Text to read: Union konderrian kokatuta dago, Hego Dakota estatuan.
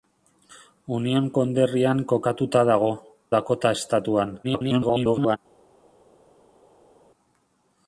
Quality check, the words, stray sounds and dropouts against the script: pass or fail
fail